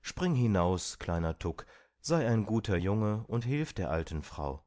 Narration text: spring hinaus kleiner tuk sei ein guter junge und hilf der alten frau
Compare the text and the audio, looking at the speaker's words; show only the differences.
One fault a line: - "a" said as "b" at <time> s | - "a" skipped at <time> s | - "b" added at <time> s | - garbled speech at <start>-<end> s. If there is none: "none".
none